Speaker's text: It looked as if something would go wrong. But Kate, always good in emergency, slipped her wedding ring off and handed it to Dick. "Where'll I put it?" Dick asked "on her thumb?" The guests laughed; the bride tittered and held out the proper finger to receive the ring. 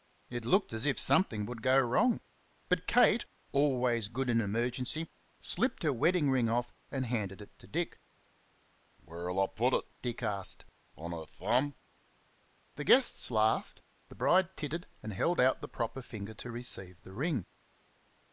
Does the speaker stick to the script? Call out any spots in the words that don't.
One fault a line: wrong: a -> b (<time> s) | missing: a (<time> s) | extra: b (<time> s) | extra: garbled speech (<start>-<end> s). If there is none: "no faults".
no faults